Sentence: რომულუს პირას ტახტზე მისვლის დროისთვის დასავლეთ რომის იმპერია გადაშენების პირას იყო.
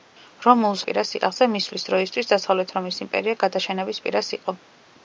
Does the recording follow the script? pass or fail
pass